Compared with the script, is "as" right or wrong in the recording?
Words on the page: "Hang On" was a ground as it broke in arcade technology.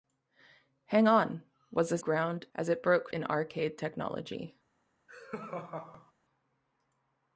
right